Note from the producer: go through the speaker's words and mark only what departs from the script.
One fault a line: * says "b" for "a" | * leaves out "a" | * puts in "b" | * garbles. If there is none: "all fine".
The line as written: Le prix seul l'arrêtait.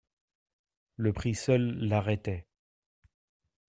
all fine